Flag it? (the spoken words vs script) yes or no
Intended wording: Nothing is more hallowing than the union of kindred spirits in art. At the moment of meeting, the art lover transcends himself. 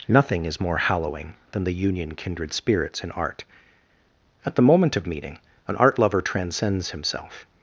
yes